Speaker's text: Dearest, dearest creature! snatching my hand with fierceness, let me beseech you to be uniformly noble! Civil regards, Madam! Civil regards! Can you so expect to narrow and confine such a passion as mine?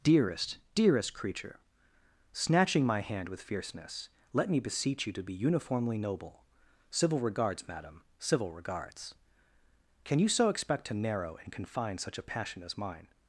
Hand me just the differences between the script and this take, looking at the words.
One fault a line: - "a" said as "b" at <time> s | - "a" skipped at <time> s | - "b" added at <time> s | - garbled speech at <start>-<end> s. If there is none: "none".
none